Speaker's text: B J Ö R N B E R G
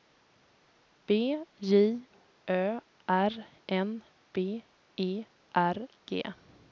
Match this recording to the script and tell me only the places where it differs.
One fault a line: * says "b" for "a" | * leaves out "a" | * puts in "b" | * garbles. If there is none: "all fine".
all fine